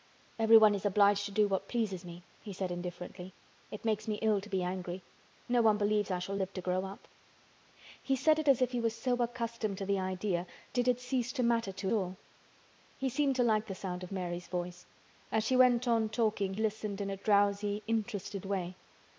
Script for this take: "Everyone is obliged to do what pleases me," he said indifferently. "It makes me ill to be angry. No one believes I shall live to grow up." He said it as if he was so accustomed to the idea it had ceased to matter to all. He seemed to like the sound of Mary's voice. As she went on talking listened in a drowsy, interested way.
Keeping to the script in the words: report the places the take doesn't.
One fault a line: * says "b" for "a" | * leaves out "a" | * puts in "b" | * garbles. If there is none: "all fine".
all fine